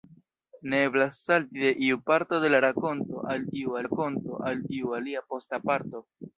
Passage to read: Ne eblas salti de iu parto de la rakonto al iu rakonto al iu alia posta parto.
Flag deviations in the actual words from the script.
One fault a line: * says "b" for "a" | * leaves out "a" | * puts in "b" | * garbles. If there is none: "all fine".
all fine